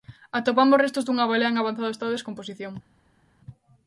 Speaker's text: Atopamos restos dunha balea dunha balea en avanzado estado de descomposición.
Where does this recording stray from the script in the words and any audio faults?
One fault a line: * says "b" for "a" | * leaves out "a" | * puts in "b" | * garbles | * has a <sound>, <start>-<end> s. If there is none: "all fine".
* leaves out "dunha balea"